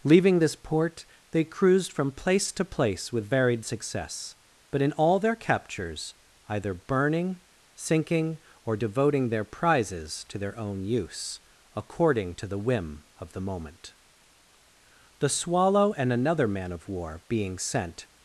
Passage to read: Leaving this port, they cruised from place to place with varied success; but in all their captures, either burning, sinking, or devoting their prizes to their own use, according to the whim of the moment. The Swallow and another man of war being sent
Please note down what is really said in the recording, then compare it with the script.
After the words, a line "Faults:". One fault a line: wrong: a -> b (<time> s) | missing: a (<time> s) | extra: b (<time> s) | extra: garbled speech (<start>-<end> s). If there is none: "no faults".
Leaving this port, they cruised from place to place with varied success; but in all their captures, either burning, sinking, or devoting their prizes to their own use, according to the whim of the moment. The Swallow and another man of war being sent
Faults:
no faults